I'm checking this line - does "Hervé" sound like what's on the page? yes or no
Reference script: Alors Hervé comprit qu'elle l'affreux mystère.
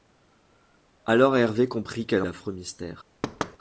yes